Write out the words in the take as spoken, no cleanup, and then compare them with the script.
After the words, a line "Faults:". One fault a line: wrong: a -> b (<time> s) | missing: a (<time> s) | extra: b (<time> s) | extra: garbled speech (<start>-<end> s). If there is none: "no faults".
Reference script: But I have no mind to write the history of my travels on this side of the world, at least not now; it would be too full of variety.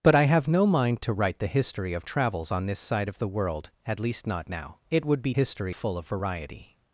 But I have no mind to write the history of travels on this side of the world, at least not now; it would be history full of variety.
Faults:
missing: my (2.1 s)
wrong: too -> history (5.3 s)